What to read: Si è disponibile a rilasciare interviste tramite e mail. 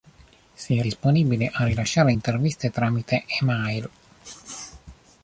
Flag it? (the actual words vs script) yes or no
no